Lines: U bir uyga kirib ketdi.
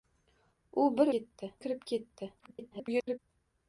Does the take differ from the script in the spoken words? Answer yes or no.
yes